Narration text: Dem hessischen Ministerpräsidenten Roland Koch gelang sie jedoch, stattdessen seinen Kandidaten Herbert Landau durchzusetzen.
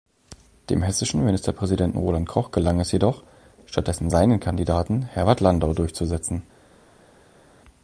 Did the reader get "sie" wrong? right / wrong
wrong